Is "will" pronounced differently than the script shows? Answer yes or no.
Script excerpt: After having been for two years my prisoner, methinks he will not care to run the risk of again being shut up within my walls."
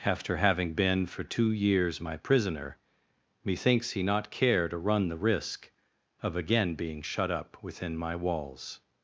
yes